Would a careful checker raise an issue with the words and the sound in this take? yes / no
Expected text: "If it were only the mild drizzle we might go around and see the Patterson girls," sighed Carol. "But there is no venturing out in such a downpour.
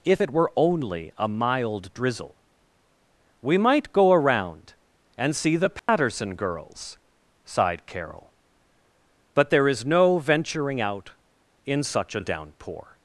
yes